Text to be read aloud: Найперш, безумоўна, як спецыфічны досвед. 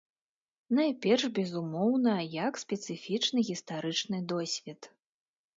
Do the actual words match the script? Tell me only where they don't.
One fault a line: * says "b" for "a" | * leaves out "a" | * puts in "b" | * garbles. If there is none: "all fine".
* puts in "гістарычны"